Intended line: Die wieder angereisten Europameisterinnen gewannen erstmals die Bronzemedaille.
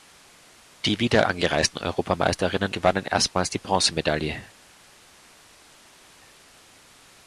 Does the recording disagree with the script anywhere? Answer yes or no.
no